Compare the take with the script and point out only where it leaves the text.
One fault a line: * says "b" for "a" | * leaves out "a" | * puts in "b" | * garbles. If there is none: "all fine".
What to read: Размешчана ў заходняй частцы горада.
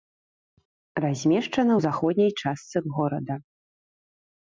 all fine